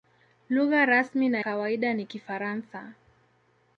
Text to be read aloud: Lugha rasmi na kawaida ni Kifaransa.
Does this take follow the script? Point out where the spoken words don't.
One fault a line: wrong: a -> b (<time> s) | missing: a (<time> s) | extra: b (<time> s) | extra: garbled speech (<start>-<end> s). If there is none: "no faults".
no faults